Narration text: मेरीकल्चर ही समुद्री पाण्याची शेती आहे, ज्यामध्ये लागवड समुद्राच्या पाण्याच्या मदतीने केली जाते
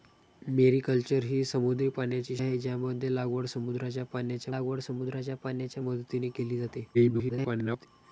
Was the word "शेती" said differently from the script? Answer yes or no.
yes